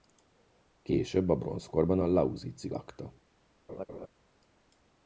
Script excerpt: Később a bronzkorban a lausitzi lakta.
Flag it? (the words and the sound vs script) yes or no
yes